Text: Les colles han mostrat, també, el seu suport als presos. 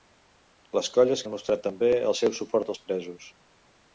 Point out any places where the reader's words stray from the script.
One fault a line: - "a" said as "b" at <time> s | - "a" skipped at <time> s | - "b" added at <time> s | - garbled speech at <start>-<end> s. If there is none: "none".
none